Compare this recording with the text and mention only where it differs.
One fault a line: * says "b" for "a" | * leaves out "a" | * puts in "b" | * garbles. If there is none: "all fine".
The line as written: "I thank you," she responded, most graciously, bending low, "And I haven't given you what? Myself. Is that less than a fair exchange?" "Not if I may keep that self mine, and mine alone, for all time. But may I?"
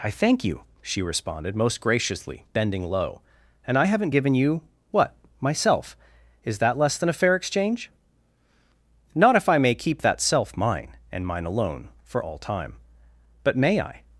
all fine